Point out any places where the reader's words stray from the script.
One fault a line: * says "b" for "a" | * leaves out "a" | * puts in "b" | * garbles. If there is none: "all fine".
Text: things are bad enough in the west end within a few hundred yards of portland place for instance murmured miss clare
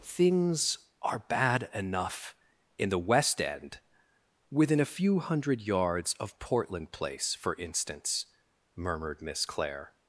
all fine